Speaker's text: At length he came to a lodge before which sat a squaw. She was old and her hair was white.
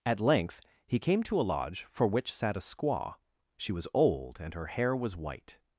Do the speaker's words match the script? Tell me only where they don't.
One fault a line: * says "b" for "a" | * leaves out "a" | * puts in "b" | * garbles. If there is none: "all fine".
* says "for" for "before"